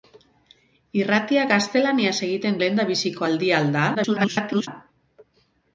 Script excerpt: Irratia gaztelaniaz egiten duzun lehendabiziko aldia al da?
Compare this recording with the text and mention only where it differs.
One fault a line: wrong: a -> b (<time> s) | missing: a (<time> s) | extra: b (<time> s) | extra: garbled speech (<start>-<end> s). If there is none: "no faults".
missing: duzun (2.6 s)
extra: garbled speech (3.9-4.7 s)